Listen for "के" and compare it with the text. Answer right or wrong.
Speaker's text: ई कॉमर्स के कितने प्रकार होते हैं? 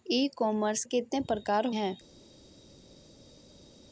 wrong